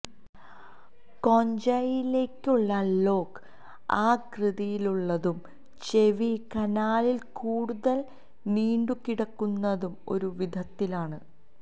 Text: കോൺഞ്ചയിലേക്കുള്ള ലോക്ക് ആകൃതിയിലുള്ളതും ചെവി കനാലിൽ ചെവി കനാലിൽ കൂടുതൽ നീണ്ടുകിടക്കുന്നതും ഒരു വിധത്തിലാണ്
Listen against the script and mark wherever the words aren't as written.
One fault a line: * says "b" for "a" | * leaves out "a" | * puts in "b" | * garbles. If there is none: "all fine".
* leaves out "ചെവി കനാലിൽ"